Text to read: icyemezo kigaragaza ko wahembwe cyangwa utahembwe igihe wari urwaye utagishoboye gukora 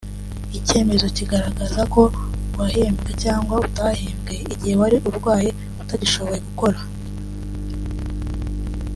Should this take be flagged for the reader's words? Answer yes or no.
no